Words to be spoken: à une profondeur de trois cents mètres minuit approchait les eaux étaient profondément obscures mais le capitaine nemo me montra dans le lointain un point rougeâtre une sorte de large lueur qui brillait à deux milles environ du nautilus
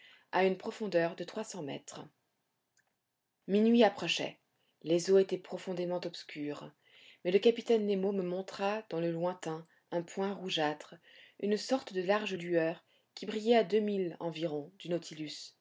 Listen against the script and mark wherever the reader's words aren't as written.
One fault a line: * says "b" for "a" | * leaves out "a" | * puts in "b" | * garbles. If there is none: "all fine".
all fine